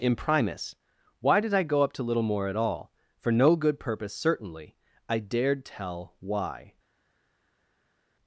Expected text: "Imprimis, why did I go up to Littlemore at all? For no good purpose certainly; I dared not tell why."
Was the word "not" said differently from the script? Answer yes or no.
yes